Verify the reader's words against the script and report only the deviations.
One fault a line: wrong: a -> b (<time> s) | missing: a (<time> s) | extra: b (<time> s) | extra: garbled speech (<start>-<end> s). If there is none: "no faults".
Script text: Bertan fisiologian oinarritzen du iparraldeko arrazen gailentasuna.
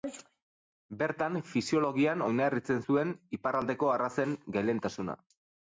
wrong: du -> zuen (2.8 s)